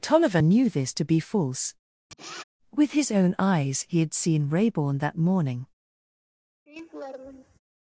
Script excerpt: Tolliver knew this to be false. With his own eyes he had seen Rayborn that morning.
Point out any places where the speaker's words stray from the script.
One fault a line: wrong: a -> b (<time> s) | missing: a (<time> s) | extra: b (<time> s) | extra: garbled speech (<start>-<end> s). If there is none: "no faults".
no faults